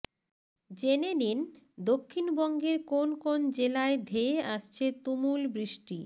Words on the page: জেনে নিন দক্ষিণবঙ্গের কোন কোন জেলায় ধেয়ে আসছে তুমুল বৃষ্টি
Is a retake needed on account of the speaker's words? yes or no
no